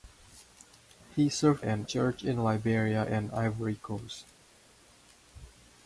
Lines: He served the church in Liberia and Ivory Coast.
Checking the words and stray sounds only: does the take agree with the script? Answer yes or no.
no